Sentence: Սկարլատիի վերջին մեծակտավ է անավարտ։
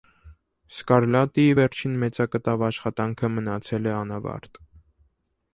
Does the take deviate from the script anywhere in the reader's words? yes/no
yes